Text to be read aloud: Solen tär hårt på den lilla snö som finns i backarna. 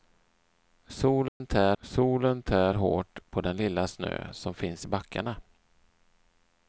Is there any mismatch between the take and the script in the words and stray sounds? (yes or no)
yes